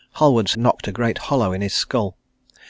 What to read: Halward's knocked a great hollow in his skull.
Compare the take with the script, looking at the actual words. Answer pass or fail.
pass